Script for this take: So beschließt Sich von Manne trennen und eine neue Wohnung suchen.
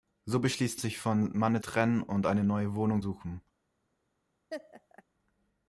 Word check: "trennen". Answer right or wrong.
right